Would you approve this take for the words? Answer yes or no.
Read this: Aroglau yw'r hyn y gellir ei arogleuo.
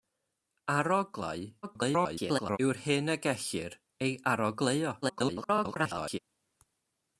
no